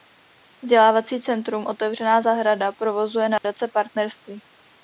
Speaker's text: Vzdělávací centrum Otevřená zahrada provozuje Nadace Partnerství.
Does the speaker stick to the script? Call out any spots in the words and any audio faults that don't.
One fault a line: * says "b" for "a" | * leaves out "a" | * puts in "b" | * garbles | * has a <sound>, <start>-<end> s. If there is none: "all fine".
* has a dropout, 3.4-3.4 s